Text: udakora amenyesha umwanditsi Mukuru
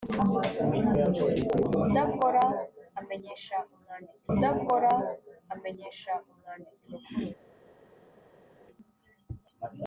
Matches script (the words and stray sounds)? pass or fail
fail